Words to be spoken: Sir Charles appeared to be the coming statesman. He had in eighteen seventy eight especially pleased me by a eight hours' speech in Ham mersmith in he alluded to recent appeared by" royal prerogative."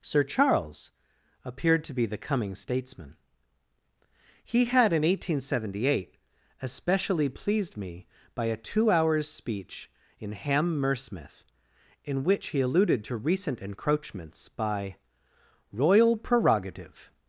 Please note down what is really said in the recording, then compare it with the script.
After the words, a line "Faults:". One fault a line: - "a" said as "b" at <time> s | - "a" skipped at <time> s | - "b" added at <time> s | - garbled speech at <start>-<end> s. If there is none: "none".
Sir Charles appeared to be the coming statesman. He had in eighteen seventy eight especially pleased me by a two hours' speech in Ham mersmith in which he alluded to recent encroachments by" royal prerogative."
Faults:
- "eight" said as "two" at 8.6 s
- "which" added at 12.2 s
- "appeared" said as "encroachments" at 13.6 s